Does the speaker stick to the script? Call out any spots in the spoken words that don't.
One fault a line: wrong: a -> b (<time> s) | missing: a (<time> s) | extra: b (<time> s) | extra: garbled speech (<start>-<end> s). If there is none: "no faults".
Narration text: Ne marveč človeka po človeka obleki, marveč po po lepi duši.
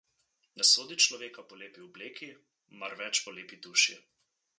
wrong: marveč -> sodi (0.7 s)
wrong: človeka -> lepi (1.6 s)
missing: po (3.4 s)